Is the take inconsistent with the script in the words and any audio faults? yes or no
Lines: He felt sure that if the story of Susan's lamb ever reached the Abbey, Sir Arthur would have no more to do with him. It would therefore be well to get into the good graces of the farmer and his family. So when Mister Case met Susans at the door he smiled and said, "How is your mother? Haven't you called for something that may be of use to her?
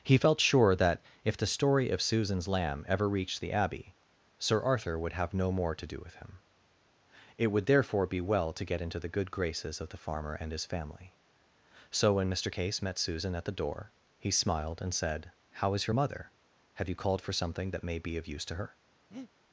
yes